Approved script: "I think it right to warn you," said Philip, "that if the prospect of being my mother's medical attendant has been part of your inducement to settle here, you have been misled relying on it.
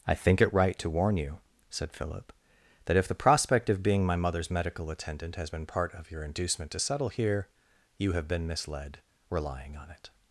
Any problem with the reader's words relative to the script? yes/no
no